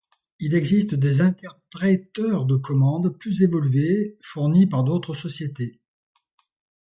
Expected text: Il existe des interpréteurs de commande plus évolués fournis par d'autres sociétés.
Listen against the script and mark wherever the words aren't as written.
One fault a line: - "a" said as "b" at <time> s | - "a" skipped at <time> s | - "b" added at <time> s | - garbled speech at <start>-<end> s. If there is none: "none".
none